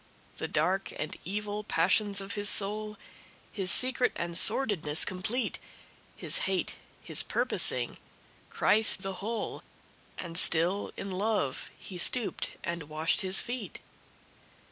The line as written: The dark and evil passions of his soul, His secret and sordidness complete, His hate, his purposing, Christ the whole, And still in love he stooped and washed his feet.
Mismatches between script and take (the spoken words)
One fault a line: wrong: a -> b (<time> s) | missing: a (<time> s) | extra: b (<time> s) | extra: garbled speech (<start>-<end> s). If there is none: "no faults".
no faults